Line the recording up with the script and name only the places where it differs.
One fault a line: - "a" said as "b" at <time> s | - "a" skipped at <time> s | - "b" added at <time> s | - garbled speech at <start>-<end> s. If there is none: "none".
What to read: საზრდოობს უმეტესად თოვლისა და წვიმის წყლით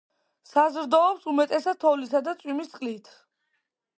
none